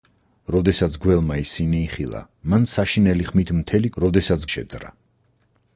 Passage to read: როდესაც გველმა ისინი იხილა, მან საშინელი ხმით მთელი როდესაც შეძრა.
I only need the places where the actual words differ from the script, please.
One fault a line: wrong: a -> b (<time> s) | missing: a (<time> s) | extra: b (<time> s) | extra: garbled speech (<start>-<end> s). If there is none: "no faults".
no faults